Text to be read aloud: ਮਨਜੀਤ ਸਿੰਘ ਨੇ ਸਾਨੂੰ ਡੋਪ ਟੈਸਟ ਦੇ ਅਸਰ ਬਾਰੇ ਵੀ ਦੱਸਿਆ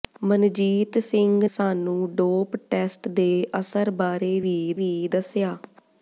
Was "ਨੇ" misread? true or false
true